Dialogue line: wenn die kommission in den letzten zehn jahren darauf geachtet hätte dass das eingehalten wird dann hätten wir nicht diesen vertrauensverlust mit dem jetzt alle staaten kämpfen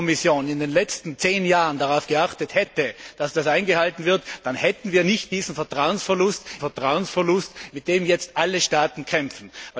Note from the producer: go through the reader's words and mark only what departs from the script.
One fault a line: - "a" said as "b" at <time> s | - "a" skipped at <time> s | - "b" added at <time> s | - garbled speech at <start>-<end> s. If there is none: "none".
- "vertrauensverlust" added at 6.6 s